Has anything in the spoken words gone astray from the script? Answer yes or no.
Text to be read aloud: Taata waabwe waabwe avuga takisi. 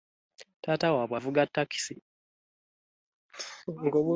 yes